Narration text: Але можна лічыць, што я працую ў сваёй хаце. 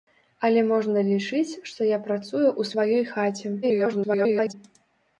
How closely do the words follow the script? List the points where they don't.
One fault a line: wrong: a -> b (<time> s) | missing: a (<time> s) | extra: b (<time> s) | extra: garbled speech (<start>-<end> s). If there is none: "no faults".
extra: garbled speech (3.6-4.5 s)